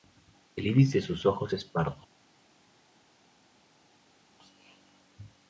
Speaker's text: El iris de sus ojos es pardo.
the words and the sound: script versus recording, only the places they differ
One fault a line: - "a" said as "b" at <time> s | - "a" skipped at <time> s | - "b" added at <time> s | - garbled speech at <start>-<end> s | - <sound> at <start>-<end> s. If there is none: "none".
none